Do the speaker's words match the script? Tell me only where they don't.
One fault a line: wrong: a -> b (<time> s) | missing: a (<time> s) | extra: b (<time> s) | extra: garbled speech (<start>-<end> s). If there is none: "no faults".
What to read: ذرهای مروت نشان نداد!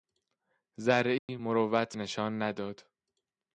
no faults